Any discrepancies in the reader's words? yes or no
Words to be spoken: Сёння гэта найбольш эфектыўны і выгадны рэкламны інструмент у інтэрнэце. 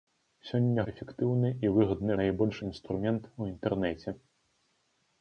yes